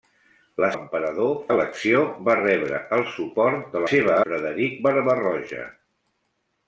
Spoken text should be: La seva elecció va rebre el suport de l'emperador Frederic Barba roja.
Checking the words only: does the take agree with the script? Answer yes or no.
no